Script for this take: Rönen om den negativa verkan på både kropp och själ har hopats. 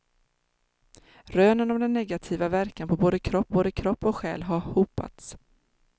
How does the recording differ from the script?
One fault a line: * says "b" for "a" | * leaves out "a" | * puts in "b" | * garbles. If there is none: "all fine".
* puts in "både kropp"